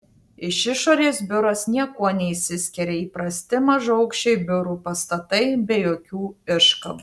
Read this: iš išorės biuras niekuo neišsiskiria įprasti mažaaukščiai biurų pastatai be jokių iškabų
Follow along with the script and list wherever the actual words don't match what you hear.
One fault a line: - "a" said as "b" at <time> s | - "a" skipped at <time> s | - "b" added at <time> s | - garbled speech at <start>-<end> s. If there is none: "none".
none